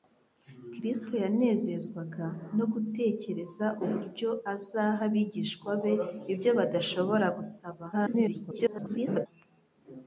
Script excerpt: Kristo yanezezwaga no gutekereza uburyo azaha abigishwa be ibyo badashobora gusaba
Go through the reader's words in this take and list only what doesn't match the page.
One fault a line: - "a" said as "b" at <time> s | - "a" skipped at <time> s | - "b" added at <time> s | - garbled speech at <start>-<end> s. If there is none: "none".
- garbled speech at 7.9-9.3 s